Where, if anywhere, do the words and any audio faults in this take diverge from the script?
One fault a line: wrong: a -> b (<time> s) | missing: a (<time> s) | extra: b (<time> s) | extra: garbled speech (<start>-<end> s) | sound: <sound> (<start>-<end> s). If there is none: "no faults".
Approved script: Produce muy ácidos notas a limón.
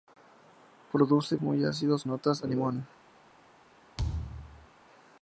sound: thud (4.0-4.7 s)